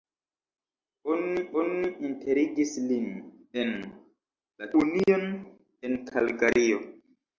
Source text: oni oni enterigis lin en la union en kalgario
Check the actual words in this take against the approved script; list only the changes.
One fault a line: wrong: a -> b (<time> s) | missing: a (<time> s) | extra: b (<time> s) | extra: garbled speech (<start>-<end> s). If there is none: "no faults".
no faults